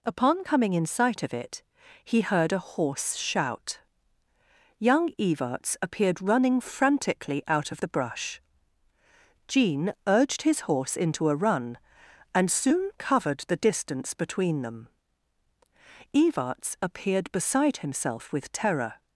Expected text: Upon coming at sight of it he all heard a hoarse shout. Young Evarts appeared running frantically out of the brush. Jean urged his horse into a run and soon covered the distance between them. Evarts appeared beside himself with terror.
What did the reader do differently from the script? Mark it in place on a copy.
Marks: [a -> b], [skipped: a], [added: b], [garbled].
Upon coming [at -> in] sight of it he [skipped: all] heard a hoarse shout. Young Evarts appeared running frantically out of the brush. Jean urged his horse into a run and soon covered the distance between them. Evarts appeared beside himself with terror.